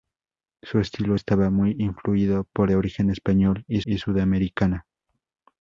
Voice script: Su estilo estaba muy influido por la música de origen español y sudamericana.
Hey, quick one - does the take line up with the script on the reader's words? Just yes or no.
no